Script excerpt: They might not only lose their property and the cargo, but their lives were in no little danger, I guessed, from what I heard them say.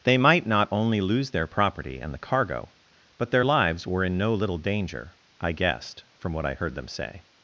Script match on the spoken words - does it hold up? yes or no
yes